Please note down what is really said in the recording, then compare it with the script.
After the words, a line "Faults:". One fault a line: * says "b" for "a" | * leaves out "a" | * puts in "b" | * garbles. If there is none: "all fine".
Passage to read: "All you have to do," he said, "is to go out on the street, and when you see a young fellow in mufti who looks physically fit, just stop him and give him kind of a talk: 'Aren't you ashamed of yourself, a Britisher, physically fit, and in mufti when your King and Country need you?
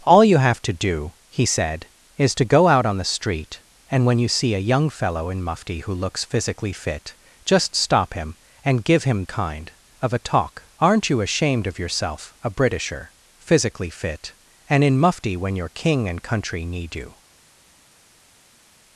"All you have to do," he said, "is to go out on the street, and when you see a young fellow in mufti who looks physically fit, just stop him and give him kind of a talk: 'Aren't you ashamed of yourself, a Britisher, physically fit, and in mufti when your King and Country need you?
Faults:
all fine